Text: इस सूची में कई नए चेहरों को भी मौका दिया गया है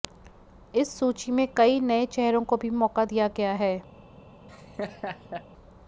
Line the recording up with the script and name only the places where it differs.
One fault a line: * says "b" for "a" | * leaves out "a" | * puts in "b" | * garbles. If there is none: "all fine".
all fine